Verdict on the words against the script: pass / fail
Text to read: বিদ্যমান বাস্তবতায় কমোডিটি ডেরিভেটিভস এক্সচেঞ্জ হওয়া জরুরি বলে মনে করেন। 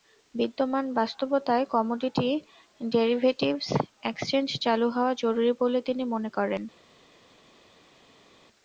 fail